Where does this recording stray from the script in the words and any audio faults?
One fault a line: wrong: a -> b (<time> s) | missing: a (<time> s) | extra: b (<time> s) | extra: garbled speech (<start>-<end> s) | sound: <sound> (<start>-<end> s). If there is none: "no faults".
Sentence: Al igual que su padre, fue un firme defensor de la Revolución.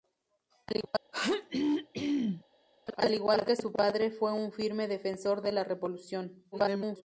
sound: throat clearing (1.1-2.4 s)
extra: garbled speech (6.5-7.0 s)